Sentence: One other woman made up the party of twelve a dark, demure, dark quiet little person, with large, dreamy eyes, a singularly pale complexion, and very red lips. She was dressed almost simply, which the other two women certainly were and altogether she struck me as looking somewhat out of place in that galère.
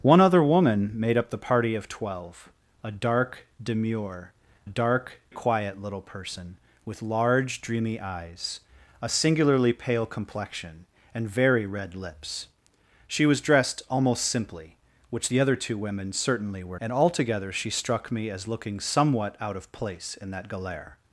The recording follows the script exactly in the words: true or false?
true